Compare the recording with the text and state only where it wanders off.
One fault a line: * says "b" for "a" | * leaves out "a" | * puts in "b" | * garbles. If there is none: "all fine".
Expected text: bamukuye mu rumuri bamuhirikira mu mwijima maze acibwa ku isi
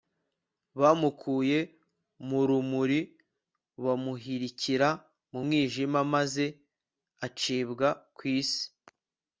all fine